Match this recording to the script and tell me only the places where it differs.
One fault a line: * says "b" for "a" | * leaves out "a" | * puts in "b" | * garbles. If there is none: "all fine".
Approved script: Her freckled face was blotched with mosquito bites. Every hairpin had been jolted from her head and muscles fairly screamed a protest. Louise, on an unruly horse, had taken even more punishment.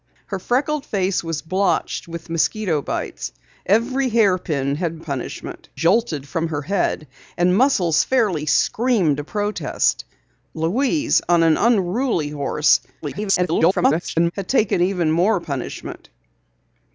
* says "punishment" for "been"
* garbles